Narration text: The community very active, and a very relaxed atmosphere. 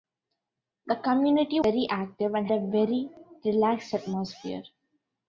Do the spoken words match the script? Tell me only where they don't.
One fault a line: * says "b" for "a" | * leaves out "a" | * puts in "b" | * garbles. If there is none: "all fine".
all fine